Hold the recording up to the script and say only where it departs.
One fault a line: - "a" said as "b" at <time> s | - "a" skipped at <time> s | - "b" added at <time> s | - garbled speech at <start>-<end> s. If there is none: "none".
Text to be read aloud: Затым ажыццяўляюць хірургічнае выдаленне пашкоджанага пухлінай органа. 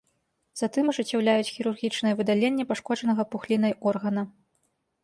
none